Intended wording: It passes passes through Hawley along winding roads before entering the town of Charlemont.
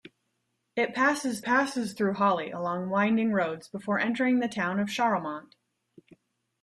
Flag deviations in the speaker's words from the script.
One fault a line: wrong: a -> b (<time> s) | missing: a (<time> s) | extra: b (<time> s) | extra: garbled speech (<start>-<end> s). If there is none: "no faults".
no faults